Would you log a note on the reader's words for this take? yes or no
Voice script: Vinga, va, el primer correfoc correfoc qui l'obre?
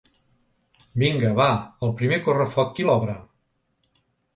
yes